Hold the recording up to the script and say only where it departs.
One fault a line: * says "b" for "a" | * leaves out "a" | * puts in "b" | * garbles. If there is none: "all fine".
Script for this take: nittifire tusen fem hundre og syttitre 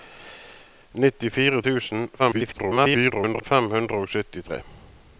* garbles